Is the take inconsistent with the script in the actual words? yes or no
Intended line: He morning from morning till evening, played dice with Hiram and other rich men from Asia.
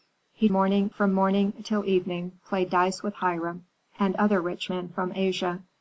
no